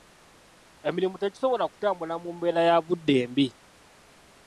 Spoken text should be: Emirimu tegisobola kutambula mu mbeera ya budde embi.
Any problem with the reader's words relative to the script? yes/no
no